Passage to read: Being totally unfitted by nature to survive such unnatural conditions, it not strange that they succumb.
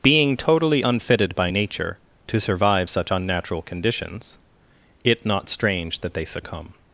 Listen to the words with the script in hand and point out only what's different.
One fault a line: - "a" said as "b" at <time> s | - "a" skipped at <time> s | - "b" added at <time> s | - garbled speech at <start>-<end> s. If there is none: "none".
none